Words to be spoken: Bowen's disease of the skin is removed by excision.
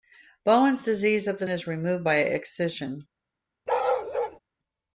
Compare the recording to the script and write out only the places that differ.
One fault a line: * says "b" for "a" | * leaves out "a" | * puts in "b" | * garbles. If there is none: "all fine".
* leaves out "skin"